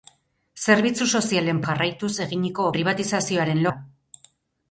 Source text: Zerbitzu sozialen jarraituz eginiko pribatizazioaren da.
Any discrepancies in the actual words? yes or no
no